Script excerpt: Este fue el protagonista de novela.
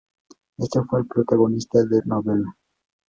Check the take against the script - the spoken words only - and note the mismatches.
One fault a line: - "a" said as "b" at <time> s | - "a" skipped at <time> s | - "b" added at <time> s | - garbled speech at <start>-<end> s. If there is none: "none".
none